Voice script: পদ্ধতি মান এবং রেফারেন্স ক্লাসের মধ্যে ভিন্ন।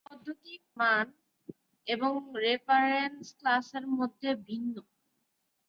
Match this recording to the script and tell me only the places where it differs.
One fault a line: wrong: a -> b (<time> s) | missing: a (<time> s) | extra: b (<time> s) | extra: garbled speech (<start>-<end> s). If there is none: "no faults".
no faults